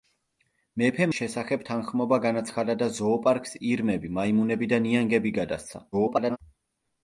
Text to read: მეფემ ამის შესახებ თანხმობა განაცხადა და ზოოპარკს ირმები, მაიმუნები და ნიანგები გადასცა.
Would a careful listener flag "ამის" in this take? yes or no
yes